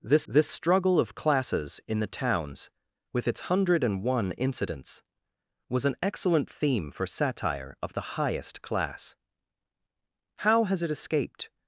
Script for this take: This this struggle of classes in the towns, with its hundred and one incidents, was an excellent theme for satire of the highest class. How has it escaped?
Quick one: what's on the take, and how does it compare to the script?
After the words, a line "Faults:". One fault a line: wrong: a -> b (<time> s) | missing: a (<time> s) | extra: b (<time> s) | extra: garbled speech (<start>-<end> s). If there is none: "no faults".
This this struggle of classes in the towns, with its hundred and one incidents, was an excellent theme for satire of the highest class. How has it escaped?
Faults:
no faults